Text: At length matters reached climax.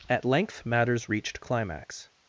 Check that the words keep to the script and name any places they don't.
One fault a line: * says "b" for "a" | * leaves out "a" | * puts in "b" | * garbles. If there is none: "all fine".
all fine